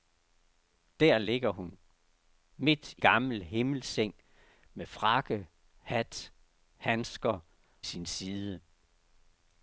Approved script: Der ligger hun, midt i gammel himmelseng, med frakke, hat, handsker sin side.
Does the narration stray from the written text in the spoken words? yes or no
no